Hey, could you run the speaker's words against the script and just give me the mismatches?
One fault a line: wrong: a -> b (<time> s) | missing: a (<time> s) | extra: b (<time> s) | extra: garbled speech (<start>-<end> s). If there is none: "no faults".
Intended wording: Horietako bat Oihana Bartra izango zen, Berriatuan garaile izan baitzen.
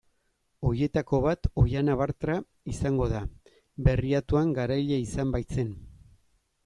wrong: zen -> da (3.1 s)